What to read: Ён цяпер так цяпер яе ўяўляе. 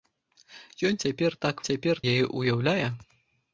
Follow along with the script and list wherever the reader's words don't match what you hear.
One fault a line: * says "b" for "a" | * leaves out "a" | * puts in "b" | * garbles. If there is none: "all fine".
all fine